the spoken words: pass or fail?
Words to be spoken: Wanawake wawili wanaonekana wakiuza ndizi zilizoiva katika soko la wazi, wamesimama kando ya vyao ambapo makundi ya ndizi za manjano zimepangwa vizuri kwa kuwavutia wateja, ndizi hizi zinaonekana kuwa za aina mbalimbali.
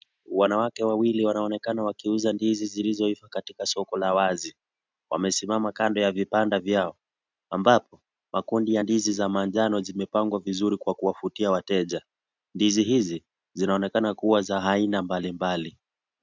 fail